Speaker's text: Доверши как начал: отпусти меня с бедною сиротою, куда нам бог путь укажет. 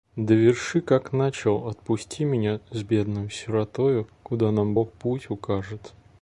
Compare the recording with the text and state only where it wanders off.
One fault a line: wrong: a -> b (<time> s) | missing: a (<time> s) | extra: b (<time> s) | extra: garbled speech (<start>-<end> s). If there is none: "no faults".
no faults